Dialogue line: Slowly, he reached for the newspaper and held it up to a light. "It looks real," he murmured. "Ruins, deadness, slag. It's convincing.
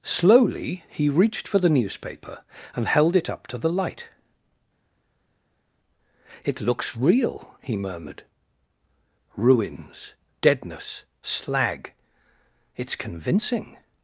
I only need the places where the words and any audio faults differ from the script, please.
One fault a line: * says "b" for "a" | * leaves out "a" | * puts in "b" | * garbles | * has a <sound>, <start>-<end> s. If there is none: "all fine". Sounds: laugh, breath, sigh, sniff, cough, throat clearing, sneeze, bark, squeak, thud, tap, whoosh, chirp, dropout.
* says "the" for "a"